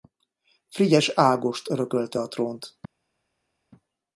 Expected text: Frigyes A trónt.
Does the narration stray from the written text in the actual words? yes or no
yes